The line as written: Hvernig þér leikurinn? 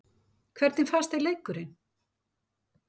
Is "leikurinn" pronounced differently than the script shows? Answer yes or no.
no